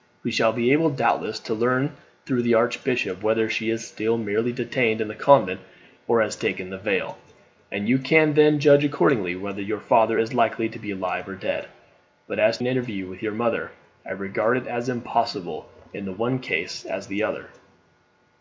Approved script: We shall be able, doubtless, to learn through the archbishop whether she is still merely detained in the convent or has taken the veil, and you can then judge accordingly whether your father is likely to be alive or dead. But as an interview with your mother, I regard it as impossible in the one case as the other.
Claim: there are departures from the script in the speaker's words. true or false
false